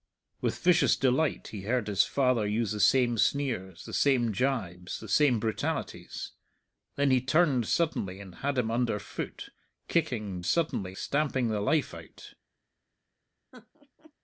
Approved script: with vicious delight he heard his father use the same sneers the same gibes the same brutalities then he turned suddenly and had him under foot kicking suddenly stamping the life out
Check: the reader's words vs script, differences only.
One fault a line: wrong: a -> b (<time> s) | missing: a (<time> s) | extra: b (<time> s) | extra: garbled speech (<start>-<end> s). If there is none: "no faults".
no faults